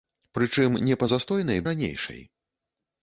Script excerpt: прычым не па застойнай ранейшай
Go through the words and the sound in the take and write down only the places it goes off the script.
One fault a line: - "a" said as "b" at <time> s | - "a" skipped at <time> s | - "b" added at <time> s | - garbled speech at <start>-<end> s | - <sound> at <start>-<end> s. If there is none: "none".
none